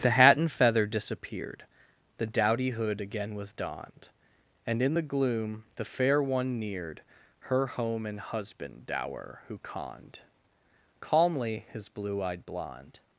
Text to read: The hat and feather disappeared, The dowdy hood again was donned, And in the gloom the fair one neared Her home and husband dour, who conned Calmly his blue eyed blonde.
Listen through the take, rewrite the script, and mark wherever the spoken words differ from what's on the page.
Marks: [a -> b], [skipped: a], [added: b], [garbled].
The hat and feather disappeared, The dowdy hood again was donned, And in the gloom the fair one neared Her home and husband dour, who conned Calmly his blue eyed blonde.